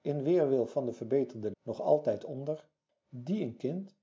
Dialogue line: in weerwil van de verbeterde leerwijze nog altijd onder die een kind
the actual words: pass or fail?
fail